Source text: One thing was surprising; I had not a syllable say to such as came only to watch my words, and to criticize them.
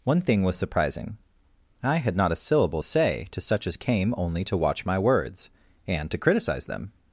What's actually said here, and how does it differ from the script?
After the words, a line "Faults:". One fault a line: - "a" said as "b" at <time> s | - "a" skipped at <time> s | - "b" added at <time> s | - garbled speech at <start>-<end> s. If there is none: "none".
One thing was surprising; I had not a syllable say to such as came only to watch my words, and to criticize them.
Faults:
none